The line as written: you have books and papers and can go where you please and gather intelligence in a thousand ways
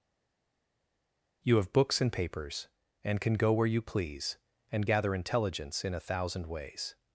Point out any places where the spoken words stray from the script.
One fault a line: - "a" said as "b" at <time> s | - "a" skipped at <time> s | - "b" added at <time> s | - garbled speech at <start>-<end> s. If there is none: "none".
none